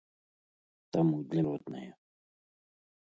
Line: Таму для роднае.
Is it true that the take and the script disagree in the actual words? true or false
false